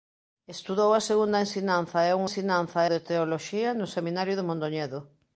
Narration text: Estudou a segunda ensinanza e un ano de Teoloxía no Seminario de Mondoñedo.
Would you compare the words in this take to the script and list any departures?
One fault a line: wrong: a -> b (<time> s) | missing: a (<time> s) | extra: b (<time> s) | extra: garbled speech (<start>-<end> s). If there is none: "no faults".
wrong: ano -> ensinanza (2.3 s)